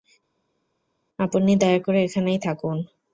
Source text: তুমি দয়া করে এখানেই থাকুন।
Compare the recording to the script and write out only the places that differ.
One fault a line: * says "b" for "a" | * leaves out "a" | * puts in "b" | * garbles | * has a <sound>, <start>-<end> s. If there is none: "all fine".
* says "আপনি" for "তুমি"